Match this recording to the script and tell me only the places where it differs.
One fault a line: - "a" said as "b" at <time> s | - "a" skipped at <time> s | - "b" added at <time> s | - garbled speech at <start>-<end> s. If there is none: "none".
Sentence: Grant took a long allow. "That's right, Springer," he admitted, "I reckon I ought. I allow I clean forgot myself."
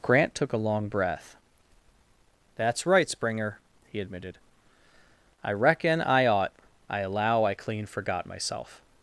- "allow" said as "breath" at 0.9 s